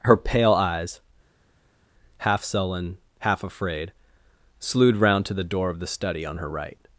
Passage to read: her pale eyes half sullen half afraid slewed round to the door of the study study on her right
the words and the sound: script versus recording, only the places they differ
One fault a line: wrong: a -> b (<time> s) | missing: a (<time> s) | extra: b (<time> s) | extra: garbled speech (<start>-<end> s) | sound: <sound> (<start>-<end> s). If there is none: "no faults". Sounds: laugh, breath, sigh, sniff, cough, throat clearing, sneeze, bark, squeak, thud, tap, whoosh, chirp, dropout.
missing: study (6.3 s)